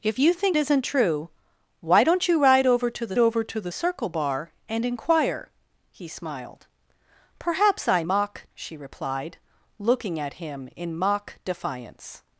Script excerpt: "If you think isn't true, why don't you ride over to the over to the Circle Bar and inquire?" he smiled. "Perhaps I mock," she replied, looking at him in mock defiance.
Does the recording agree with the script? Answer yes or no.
yes